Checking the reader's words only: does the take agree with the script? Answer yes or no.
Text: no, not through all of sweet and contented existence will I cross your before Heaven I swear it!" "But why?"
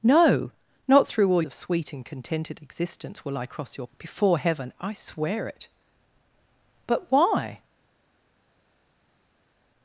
yes